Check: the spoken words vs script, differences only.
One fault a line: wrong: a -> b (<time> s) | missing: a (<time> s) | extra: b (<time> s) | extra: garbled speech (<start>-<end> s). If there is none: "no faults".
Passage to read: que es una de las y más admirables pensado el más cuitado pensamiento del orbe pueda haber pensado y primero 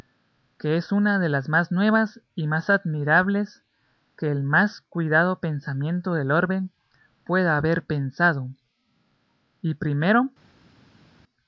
extra: más nuevas (1.5 s)
wrong: pensado -> que (4.2 s)